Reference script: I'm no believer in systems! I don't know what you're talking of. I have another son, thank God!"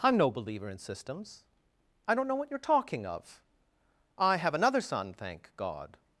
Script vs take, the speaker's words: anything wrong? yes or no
no